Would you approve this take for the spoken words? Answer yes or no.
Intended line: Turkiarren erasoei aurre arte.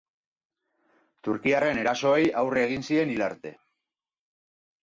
no